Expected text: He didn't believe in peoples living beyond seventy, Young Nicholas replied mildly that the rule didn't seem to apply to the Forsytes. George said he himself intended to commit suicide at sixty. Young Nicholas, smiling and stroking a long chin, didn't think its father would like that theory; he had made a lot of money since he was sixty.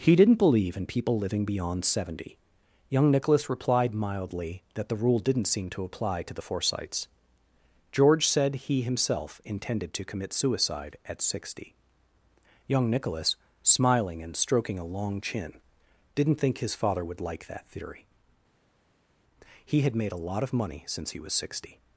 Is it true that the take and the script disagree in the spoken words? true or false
true